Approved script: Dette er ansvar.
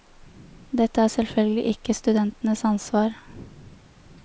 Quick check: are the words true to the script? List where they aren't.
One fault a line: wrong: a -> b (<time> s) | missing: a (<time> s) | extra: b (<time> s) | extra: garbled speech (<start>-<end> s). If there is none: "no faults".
extra: selvfølgelig ikke studentenes (1.1 s)